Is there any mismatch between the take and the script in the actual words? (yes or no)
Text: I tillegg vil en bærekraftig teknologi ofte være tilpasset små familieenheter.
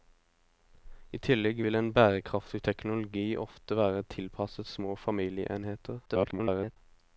yes